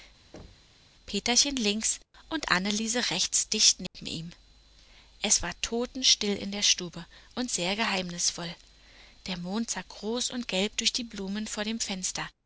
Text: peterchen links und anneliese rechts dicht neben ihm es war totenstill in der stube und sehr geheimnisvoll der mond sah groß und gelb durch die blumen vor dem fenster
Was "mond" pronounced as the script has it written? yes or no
yes